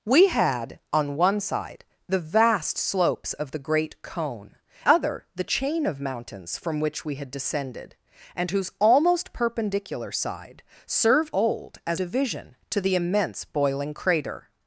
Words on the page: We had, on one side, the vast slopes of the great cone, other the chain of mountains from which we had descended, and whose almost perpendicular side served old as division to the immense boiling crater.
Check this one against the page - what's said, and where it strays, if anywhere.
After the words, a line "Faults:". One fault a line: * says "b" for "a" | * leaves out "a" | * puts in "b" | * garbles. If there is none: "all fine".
We had, on one side, the vast slopes of the great cone, other the chain of mountains from which we had descended, and whose almost perpendicular side served old as division to the immense boiling crater.
Faults:
all fine